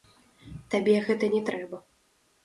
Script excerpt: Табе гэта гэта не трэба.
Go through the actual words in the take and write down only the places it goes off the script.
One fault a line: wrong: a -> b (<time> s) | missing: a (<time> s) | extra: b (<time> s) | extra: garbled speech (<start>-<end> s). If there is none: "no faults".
missing: гэта (1.3 s)